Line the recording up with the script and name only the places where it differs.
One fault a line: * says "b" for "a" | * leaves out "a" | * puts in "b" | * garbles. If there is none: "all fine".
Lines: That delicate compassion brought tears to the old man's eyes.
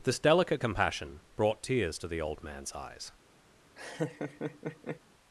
* says "This" for "That"